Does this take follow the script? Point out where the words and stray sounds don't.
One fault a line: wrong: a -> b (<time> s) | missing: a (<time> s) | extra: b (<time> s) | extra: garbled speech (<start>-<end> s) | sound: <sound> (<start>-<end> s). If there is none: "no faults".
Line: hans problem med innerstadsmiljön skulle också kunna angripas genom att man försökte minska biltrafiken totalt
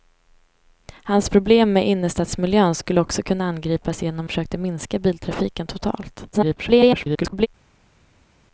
missing: att man (4.3 s)
extra: garbled speech (6.3-7.5 s)